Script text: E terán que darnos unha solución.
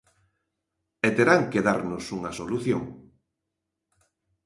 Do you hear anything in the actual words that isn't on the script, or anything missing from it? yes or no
no